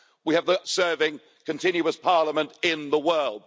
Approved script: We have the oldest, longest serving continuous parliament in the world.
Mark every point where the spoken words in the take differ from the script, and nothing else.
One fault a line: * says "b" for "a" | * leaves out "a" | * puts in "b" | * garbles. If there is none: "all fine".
* leaves out "oldest longest"